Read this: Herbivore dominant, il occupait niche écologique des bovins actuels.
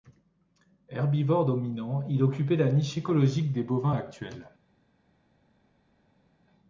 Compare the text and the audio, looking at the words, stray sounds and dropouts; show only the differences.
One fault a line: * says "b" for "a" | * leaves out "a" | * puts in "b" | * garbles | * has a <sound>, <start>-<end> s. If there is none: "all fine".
* puts in "la"